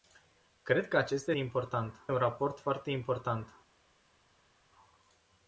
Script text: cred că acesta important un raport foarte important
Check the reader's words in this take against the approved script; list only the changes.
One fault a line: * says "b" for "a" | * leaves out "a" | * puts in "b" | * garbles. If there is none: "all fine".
all fine